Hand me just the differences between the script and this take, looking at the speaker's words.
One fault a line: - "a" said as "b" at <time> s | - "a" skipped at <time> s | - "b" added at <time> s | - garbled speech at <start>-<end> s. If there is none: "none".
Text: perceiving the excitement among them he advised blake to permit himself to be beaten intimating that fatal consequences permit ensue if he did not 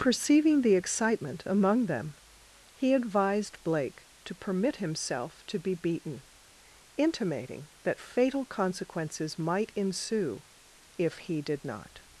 - "permit" said as "might" at 9.4 s